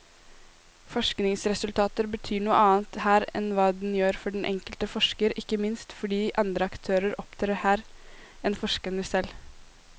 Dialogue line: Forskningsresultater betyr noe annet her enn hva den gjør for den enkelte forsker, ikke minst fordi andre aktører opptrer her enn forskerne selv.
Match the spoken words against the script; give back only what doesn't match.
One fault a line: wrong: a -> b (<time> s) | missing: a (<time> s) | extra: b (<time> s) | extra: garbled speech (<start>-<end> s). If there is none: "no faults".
no faults